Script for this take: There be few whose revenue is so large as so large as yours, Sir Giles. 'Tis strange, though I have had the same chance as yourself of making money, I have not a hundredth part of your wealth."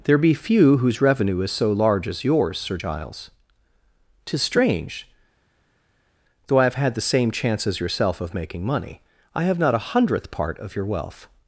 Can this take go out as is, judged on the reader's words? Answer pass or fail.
fail